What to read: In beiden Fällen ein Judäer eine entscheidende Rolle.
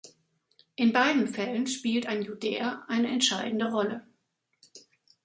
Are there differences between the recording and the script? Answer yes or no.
yes